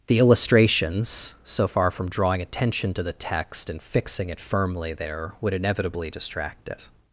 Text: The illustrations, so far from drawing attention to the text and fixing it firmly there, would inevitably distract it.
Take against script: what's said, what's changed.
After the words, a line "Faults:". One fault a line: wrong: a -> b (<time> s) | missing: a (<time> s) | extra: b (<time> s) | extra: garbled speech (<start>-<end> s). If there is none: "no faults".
The illustrations, so far from drawing attention to the text and fixing it firmly there, would inevitably distract it.
Faults:
no faults